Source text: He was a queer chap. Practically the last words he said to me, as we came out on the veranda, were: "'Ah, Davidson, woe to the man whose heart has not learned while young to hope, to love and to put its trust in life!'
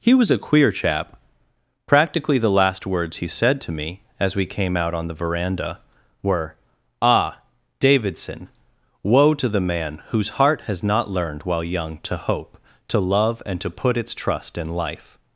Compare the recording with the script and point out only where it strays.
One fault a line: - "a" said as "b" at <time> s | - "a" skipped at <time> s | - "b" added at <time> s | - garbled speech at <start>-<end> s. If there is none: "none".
none